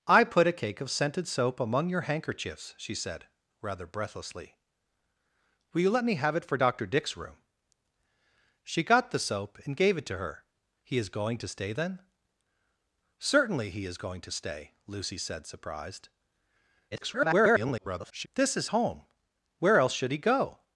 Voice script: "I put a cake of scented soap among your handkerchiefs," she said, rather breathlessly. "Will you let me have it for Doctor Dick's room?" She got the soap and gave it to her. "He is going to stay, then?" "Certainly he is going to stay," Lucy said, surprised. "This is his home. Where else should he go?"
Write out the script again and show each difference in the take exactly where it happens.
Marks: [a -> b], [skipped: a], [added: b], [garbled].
"I put a cake of scented soap among your handkerchiefs," she said, rather breathlessly. "Will you let me have it for Doctor Dick's room?" She got the soap and gave it to her. "He is going to stay, then?" "Certainly he is going to stay," Lucy said, surprised. [garbled] "This is [skipped: his] home. Where else should he go?"